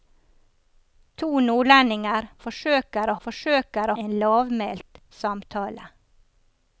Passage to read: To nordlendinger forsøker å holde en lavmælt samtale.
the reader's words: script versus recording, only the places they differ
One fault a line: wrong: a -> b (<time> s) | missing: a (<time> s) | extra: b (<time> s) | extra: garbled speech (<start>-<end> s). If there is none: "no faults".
wrong: holde -> forsøker (3.3 s)